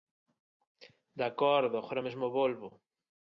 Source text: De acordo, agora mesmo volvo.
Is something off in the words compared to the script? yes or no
no